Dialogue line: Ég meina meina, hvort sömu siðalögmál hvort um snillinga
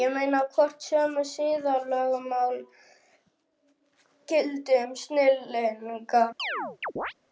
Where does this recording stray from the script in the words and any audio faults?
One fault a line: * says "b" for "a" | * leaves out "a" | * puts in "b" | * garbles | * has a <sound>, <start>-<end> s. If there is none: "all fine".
* leaves out "meina"
* says "gildi" for "hvort"
* has a chirp, 6.4-7.1 s